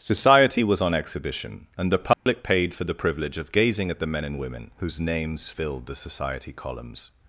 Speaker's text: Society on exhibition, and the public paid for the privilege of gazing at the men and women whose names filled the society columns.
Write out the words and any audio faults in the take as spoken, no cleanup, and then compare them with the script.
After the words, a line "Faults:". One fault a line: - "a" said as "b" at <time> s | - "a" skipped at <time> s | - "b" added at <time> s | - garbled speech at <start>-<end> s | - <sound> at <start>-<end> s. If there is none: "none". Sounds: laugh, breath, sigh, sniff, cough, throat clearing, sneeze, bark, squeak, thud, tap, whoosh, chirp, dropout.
Society was on exhibition, and the public paid for the privilege of gazing at the men and women whose names filled the society columns.
Faults:
- "was" added at 0.6 s
- dropout at 2.1-2.3 s